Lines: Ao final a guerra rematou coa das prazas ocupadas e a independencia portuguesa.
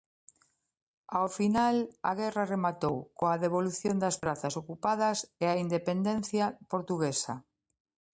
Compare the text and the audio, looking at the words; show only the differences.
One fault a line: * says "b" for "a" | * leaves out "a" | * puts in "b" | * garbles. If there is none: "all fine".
* puts in "devolución"